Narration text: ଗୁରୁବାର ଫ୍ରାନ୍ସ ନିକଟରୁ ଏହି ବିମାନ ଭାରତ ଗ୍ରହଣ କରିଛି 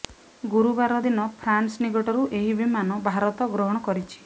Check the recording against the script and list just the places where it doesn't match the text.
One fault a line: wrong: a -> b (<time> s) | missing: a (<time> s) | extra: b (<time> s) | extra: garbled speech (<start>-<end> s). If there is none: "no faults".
extra: ଦିନ (1.0 s)